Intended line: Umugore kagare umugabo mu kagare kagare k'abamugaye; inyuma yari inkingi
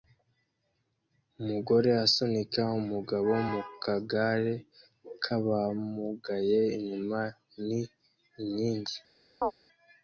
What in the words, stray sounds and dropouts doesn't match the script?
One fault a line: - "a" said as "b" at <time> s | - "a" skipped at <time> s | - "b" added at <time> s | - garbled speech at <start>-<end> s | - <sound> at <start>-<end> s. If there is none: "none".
- "kagare" said as "asunika" at 2.0 s
- "kagare" skipped at 4.5 s
- "yari" said as "ni" at 7.7 s
- chirp at 9.4-9.5 s